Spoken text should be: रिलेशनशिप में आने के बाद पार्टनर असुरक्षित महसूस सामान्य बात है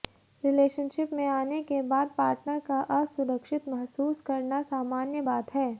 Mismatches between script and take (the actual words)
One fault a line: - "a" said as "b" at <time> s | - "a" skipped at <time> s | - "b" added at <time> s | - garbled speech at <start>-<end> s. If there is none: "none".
- "का" added at 2.7 s
- "करना" added at 4.2 s